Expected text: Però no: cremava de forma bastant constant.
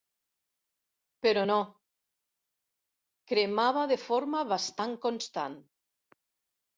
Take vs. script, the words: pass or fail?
pass